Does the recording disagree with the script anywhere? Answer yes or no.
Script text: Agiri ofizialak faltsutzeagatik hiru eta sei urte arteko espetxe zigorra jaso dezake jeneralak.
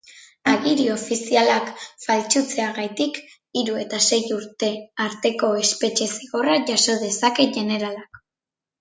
no